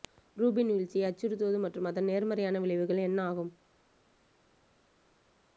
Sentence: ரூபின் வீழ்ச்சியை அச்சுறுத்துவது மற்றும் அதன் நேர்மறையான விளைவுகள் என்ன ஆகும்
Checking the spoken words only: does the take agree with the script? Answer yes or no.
yes